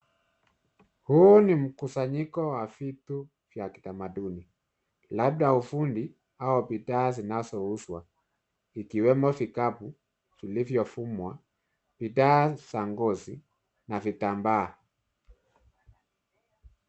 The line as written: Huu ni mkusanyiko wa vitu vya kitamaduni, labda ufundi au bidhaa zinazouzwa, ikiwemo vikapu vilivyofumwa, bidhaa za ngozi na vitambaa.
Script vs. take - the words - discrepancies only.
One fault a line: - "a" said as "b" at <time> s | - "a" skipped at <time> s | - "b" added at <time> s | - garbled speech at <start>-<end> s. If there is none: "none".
none